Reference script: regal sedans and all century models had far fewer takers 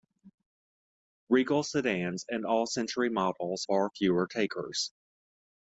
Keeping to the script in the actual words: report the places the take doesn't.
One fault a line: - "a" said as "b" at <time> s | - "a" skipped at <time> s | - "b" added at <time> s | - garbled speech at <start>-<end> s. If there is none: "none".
- "had" skipped at 3.6 s